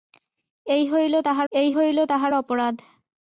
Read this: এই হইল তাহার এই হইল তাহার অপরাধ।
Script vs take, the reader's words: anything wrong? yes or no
no